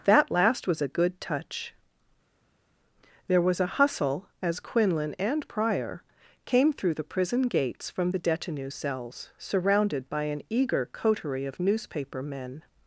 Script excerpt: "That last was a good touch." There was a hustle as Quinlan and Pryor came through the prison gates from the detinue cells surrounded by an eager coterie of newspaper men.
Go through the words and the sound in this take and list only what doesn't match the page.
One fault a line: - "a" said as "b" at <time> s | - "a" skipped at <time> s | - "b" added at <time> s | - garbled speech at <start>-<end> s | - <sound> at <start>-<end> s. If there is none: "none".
none